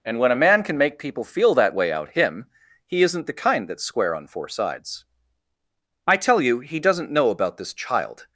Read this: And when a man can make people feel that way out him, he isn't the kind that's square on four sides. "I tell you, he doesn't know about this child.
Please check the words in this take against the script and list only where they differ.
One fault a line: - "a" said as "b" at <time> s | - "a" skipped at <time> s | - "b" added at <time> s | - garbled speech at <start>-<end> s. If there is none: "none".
none